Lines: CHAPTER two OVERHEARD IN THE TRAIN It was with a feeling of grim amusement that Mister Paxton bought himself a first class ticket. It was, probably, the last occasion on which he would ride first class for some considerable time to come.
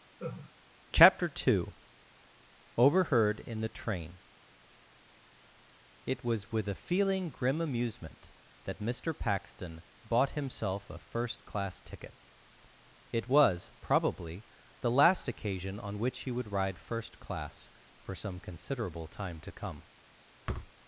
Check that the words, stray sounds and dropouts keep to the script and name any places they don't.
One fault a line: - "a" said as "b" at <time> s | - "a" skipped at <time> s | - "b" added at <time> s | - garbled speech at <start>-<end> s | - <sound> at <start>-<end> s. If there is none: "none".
- laugh at 0.2-0.5 s
- "of" skipped at 7.3 s
- thud at 20.5-20.7 s